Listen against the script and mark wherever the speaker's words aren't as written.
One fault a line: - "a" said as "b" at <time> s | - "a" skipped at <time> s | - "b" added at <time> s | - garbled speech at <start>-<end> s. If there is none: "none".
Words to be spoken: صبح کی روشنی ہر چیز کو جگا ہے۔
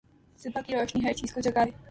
none